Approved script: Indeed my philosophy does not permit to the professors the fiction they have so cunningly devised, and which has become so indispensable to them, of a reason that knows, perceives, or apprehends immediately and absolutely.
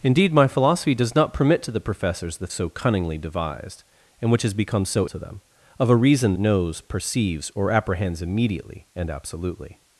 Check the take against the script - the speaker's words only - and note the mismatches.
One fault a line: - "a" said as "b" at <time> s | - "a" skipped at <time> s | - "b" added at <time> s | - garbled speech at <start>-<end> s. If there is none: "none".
- "fiction they have" skipped at 2.5 s
- "indispensable" skipped at 5.1 s
- "that" skipped at 6.3 s